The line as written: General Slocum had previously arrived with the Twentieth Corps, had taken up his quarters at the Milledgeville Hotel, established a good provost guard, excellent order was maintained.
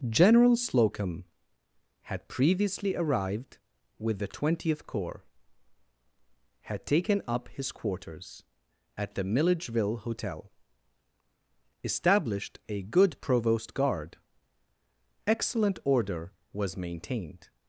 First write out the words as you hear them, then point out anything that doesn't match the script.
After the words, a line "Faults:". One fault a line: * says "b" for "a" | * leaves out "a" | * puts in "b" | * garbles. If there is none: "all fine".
General Slocum had previously arrived with the Twentieth Corps, had taken up his quarters at the Milledgeville Hotel, established a good provost guard, excellent order was maintained.
Faults:
all fine